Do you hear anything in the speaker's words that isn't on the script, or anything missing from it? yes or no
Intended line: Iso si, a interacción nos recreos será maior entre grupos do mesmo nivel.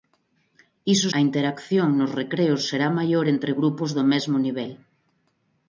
yes